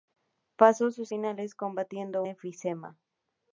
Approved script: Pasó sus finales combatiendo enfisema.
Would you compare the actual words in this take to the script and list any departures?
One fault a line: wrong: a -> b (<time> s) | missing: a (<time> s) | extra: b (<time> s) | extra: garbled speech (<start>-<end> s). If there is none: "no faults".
no faults